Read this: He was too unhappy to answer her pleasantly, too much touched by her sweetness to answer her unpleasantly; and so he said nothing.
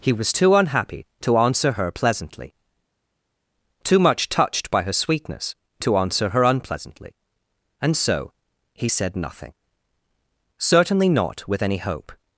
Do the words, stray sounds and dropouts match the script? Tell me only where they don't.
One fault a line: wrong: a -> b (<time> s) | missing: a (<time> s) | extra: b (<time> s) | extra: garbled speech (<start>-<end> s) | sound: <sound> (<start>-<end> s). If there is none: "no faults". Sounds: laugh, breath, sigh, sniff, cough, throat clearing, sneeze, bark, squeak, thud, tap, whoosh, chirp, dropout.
extra: Certainly not with any hope (10.6 s)